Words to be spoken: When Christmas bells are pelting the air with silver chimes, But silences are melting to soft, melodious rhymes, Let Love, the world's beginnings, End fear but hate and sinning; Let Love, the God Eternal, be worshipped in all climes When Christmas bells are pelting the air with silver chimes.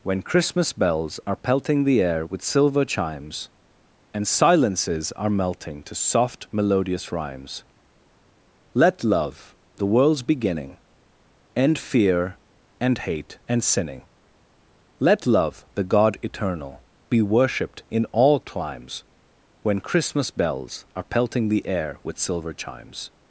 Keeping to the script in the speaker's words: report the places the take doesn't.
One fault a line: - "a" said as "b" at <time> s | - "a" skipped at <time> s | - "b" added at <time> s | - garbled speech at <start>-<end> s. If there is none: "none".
- "But" said as "And" at 4.2 s
- "beginnings" said as "beginning" at 10.2 s
- "but" said as "and" at 12.8 s